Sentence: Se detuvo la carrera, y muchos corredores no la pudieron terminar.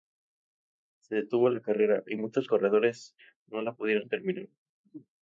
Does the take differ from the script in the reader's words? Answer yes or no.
no